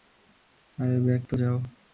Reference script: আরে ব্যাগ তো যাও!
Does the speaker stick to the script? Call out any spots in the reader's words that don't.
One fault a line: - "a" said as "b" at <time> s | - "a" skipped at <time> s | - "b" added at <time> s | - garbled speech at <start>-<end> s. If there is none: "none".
none